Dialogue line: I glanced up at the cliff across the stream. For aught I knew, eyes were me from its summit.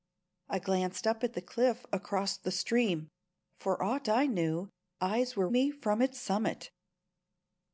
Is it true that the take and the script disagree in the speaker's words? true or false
false